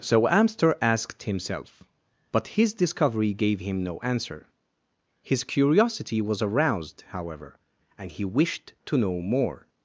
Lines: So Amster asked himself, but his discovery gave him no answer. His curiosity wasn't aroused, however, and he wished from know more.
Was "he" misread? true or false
false